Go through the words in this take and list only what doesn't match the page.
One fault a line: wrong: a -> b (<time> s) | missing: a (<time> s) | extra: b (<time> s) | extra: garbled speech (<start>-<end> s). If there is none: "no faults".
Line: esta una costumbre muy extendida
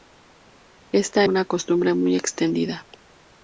no faults